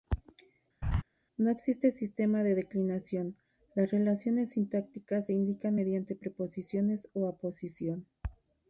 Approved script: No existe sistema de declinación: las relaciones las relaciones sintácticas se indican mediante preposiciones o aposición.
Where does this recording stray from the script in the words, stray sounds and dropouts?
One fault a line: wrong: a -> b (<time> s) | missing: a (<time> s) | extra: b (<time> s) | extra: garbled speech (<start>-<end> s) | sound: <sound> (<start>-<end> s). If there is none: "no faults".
sound: laugh (0.8-1.0 s)
missing: las relaciones (4.5 s)